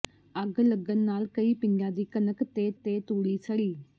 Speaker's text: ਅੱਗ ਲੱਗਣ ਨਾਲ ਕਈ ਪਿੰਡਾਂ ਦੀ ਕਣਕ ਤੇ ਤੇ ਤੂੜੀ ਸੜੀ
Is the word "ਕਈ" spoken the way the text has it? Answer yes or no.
yes